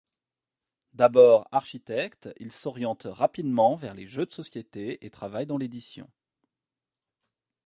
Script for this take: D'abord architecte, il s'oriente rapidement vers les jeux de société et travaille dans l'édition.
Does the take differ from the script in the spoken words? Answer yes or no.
no